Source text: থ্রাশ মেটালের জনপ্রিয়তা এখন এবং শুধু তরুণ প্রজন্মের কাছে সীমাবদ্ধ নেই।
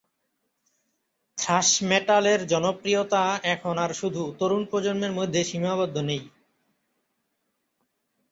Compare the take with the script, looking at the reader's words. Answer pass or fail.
fail